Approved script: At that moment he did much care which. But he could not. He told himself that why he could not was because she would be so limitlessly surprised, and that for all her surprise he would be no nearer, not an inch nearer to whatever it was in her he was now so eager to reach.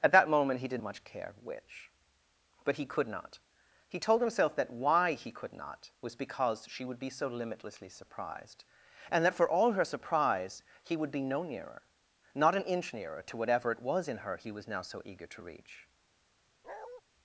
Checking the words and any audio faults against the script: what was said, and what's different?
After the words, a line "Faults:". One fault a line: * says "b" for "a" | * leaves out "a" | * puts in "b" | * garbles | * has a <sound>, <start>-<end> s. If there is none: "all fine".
At that moment he did much care which. But he could not. He told himself that why he could not was because she would be so limitlessly surprised, and that for all her surprise he would be no nearer, not an inch nearer to whatever it was in her he was now so eager to reach.
Faults:
* has a bark, 16.6-17.0 s